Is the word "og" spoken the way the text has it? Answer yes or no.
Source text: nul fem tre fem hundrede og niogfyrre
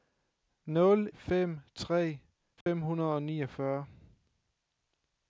yes